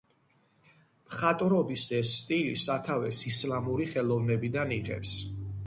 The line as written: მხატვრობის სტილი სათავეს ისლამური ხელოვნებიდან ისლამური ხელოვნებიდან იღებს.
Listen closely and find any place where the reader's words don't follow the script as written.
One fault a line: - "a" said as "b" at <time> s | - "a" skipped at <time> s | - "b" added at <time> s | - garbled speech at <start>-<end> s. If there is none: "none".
- "ეს" added at 2.0 s
- "ისლამური ხელოვნებიდან" skipped at 4.8 s